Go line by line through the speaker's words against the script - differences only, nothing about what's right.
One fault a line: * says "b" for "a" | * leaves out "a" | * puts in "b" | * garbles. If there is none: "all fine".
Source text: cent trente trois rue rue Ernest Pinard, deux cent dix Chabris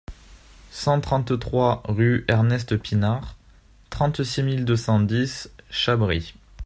* leaves out "rue"
* puts in "trente six mille"